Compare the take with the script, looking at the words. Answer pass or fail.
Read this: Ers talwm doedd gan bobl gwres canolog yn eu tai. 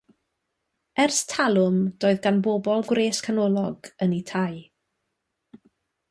pass